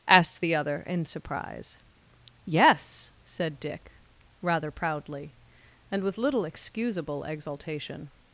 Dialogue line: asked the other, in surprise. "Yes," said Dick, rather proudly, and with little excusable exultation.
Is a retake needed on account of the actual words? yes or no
no